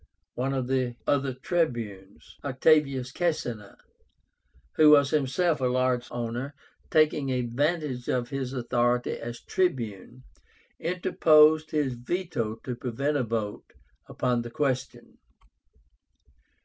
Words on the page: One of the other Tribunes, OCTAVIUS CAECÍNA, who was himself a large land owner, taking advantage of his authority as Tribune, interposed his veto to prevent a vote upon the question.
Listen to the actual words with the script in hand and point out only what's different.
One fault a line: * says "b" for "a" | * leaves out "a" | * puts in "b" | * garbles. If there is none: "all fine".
* leaves out "land"